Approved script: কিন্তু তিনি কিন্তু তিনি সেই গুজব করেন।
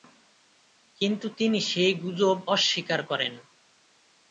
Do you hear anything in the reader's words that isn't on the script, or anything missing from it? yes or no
yes